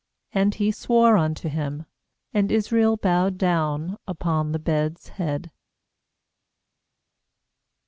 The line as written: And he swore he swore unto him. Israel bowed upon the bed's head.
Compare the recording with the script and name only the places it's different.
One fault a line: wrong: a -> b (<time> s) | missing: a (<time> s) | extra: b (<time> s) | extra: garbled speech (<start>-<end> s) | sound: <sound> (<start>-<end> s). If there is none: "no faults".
missing: he swore (1.2 s)
extra: And (2.3 s)
extra: down (3.4 s)